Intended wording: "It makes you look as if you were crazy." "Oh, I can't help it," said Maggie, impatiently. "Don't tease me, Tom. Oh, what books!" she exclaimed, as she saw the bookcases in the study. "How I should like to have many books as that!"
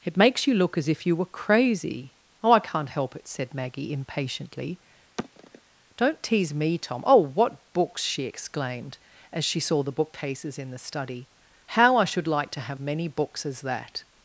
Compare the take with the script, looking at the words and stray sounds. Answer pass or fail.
fail